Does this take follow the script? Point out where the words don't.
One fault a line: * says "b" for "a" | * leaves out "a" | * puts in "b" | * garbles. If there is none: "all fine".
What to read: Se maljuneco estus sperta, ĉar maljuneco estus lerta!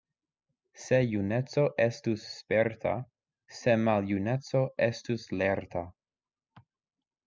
* says "juneco" for "maljuneco"
* says "se" for "ĉar"